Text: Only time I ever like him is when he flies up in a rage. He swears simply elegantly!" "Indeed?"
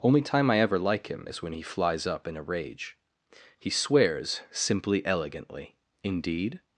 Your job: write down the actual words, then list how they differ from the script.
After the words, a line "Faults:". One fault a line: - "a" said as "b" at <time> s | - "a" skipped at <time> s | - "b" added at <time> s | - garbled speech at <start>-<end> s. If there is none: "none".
Only time I ever like him is when he flies up in a rage. He swears simply elegantly!" "Indeed?"
Faults:
none